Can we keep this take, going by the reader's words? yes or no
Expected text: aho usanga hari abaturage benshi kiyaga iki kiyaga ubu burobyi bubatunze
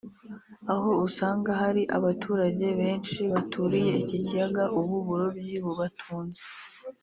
no